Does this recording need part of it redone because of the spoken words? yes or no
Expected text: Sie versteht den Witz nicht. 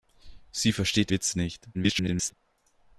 yes